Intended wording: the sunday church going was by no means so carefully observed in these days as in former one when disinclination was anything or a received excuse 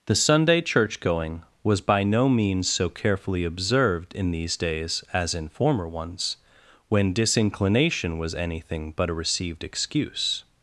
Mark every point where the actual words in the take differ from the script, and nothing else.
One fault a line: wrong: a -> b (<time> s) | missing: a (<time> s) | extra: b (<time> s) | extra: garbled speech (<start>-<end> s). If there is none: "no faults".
wrong: one -> ones (5.9 s)
wrong: or -> but (8.9 s)